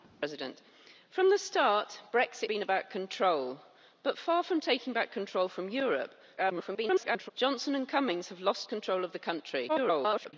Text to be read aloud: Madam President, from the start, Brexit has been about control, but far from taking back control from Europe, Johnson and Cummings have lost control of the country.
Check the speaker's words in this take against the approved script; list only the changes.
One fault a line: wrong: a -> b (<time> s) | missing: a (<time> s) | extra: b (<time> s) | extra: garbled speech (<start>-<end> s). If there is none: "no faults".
missing: has (2.5 s)
extra: garbled speech (6.4-7.3 s)
extra: garbled speech (9.7-10.3 s)